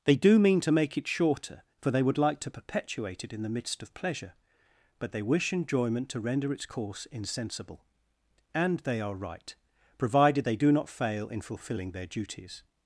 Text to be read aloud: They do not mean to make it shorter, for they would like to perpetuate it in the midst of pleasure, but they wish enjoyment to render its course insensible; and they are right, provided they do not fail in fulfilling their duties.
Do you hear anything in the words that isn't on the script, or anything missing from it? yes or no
yes